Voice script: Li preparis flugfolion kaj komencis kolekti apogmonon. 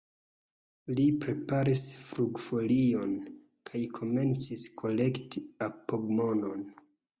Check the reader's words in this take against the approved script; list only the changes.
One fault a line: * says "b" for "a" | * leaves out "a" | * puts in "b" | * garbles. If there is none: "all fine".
all fine